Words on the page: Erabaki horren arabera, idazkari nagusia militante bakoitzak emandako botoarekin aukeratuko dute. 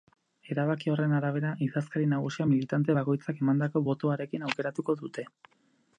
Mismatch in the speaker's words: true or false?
false